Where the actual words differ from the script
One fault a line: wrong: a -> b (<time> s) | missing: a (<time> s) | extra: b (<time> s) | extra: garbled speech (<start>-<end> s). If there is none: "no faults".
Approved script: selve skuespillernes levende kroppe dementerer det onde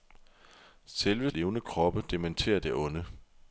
missing: skuespillernes (1.3 s)